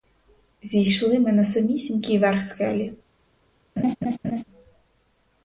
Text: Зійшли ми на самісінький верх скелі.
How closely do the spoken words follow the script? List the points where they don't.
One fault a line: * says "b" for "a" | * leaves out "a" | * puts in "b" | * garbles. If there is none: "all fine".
all fine